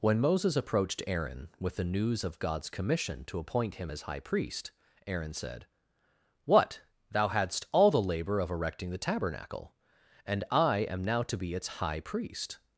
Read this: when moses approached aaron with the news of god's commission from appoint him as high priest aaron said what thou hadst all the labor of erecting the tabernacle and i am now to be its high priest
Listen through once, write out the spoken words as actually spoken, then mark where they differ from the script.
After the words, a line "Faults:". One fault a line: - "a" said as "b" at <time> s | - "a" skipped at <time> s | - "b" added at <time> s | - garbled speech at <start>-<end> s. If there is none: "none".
when moses approached aaron with the news of god's commission to appoint him as high priest aaron said what thou hadst all the labor of erecting the tabernacle and i am now to be its high priest
Faults:
- "from" said as "to" at 3.2 s